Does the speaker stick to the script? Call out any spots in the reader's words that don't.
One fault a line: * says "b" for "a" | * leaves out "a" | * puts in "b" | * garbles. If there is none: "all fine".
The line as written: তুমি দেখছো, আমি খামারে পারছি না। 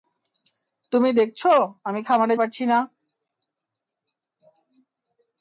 all fine